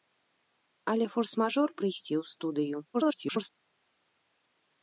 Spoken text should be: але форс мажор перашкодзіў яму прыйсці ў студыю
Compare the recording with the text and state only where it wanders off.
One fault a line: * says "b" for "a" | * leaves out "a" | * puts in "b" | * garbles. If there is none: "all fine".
* leaves out "перашкодзіў яму"
* garbles